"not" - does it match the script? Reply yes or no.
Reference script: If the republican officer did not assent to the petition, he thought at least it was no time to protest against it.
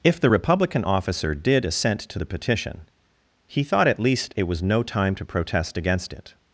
no